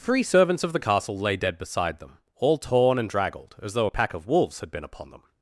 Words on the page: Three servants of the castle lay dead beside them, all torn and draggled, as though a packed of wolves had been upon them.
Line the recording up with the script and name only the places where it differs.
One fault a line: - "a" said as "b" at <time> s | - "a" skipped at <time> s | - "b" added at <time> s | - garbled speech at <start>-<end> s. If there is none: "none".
- "packed" said as "pack" at 3.9 s